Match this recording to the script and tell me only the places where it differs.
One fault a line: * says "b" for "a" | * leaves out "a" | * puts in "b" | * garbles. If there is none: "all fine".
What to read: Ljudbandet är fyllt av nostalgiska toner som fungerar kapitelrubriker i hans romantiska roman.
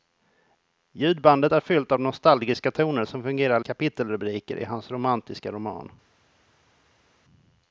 all fine